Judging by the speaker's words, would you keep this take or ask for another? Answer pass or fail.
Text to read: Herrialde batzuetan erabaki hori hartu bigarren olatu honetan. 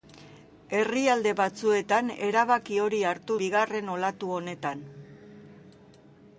pass